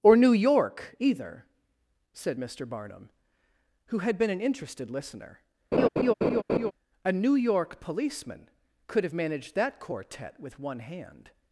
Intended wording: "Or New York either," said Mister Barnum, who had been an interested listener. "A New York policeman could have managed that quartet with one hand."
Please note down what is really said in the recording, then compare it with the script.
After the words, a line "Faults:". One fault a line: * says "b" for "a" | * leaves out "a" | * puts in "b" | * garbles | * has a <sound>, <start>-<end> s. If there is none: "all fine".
"Or New York either," said Mister Barnum, who had been an interested listener. "A New York policeman could have managed that quartet with one hand."
Faults:
* has a laugh, 5.7-6.7 s